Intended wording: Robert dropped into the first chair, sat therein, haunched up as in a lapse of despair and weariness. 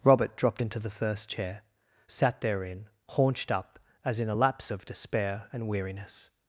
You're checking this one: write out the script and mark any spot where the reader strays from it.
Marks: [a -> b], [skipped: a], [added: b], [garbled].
Robert dropped into the first chair, sat therein, haunched up as in a lapse of despair and weariness.